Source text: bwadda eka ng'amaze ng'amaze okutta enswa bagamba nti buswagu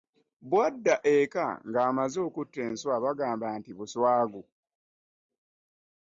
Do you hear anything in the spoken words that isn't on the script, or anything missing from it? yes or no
yes